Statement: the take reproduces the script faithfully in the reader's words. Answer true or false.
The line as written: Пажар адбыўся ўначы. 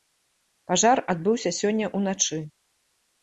false